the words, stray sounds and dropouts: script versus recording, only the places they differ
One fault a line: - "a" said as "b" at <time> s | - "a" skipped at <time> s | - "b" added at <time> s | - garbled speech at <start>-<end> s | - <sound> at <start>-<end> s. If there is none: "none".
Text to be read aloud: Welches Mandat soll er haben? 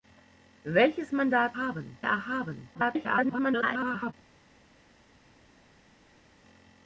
- "soll" said as "haben" at 1.5 s
- garbled speech at 2.7-4.1 s